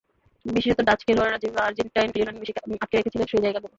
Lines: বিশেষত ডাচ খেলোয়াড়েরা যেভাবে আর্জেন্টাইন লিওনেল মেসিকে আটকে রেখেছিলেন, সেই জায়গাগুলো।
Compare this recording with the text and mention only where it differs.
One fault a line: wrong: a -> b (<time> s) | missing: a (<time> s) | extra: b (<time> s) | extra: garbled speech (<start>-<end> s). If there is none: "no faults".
no faults